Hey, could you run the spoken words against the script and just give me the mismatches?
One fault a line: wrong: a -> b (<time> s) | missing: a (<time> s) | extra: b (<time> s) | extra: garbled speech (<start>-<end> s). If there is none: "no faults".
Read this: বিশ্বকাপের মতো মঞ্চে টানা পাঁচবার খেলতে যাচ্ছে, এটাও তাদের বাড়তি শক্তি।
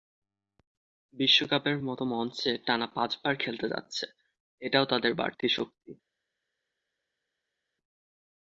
no faults